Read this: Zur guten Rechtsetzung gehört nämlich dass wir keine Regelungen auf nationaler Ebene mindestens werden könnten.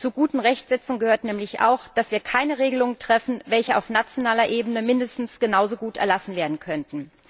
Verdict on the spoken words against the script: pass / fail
fail